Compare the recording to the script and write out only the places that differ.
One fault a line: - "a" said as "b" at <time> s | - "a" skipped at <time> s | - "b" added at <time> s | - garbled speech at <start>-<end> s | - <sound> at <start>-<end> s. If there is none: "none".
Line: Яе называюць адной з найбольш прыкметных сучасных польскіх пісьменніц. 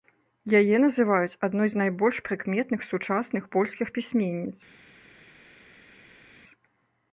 none